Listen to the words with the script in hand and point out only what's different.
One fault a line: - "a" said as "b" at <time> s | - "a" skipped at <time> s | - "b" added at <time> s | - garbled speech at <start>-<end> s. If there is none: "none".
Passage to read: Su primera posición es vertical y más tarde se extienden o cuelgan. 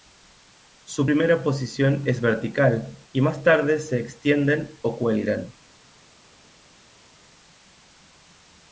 none